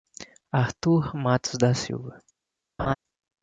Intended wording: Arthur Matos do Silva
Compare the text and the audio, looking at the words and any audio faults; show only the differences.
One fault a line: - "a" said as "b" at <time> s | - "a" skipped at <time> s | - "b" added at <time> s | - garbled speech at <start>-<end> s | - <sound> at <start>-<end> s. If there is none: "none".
- "do" said as "da" at 1.6 s
- laugh at 2.8-2.9 s